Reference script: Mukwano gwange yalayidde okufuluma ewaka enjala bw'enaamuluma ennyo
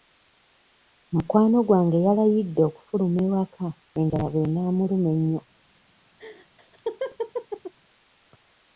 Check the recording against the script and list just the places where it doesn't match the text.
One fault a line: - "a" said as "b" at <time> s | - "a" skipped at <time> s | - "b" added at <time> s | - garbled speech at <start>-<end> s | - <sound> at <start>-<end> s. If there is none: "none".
- laugh at 6.2-7.7 s